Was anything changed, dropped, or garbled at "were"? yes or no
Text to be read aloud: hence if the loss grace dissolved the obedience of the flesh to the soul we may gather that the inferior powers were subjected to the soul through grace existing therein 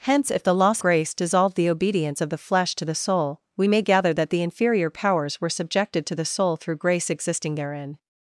no